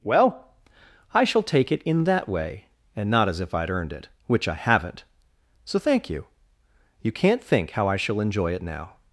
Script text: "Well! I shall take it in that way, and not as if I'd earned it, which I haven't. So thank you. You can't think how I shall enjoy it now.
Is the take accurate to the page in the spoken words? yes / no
yes